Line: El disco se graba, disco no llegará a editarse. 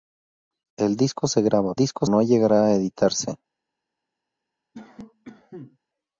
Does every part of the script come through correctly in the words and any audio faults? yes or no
no